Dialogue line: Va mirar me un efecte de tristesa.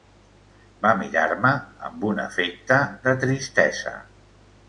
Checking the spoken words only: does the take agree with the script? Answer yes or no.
no